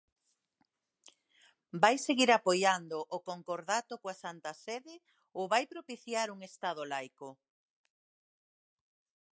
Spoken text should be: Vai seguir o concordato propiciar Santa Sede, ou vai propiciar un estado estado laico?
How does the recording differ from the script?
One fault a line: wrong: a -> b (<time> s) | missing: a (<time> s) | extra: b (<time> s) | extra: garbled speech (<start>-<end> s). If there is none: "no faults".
extra: apoiando (2.4 s)
wrong: propiciar -> coa (4.0 s)
missing: estado (6.8 s)